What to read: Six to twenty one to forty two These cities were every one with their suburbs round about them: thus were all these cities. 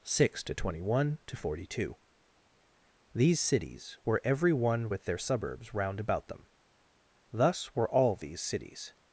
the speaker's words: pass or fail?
pass